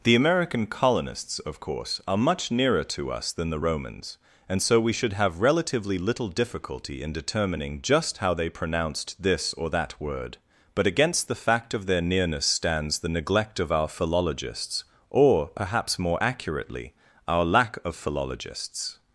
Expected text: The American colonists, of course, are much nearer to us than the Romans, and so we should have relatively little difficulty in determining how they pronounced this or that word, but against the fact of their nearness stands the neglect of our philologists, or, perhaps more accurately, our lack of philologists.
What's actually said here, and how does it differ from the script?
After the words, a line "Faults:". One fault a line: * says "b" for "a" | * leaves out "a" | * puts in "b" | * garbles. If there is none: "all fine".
The American colonists, of course, are much nearer to us than the Romans, and so we should have relatively little difficulty in determining just how they pronounced this or that word, but against the fact of their nearness stands the neglect of our philologists, or, perhaps more accurately, our lack of philologists.
Faults:
* puts in "just"